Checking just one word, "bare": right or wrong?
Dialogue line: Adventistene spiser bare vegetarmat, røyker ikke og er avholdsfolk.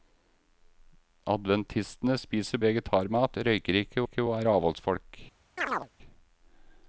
wrong